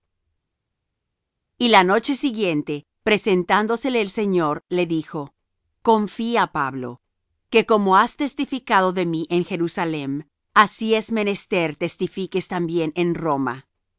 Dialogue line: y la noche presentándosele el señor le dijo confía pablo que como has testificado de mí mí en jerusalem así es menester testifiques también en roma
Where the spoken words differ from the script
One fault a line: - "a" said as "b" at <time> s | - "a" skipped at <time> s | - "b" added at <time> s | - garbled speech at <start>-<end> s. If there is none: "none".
- "siguiente" added at 2.2 s
- "mí" skipped at 9.3 s